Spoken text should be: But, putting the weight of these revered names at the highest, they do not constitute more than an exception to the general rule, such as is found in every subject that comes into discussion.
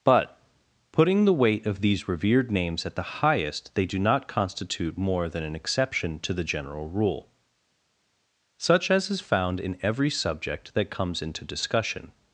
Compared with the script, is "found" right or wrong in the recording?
right